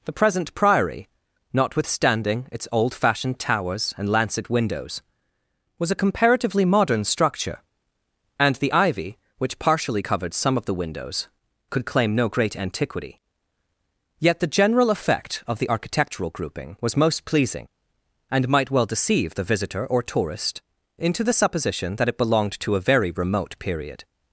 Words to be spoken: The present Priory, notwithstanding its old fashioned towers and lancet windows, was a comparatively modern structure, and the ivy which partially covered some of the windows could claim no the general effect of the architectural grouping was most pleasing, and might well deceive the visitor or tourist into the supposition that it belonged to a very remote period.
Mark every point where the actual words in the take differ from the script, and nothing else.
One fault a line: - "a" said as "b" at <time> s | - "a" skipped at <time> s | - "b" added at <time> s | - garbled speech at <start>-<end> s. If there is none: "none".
- "great antiquity yet" added at 12.3 s